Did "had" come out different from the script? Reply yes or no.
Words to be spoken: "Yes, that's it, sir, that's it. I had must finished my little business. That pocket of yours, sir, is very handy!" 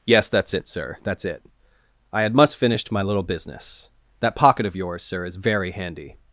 no